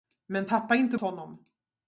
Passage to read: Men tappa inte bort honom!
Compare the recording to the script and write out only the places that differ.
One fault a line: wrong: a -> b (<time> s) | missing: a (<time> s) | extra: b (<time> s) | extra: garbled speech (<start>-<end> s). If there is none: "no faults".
missing: bort (1.0 s)